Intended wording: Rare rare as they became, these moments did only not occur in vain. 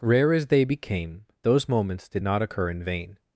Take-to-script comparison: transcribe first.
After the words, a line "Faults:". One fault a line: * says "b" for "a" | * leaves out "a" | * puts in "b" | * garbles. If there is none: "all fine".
Rare as they became, those moments did not occur in vain.
Faults:
* leaves out "rare"
* says "those" for "these"
* leaves out "only"